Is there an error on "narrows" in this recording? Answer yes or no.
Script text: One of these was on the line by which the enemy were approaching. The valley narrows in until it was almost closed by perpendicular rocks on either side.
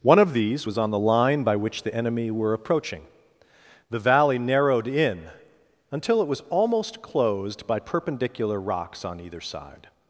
yes